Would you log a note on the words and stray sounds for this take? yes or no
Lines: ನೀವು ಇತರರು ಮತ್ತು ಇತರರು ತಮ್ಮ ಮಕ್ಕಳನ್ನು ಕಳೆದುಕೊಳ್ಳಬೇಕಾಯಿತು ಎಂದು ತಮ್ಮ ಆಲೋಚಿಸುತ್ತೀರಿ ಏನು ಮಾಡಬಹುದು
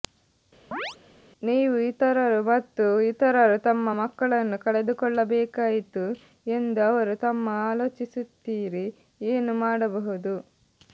yes